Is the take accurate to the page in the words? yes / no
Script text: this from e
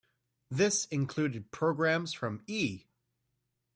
no